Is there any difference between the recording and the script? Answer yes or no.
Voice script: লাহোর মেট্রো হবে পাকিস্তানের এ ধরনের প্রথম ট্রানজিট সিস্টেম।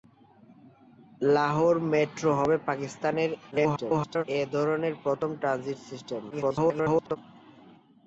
yes